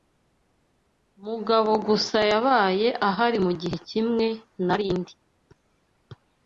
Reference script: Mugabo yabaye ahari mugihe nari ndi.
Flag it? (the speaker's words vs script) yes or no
yes